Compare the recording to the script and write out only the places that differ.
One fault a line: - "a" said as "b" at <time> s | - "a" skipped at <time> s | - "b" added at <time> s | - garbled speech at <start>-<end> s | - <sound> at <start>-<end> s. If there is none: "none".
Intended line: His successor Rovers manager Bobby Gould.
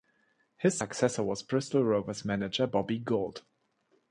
- "was Bristol" added at 1.2 s